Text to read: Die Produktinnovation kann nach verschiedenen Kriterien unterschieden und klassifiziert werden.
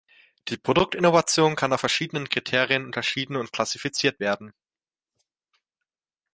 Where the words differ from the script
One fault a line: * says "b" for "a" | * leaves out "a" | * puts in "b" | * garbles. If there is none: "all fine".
all fine